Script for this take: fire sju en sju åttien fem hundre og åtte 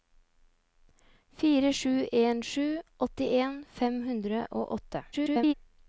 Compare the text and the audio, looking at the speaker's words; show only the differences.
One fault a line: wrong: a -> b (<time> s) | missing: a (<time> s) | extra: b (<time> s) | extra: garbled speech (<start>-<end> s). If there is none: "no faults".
extra: garbled speech (5.1-5.5 s)